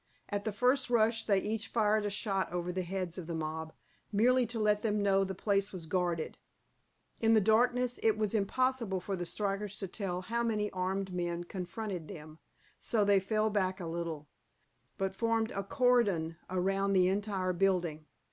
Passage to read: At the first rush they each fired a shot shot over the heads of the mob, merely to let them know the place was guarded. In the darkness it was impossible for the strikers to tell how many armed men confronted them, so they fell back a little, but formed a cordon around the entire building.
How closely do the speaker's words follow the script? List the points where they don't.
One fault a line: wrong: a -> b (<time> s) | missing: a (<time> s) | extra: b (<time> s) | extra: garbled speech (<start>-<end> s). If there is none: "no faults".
missing: shot (2.5 s)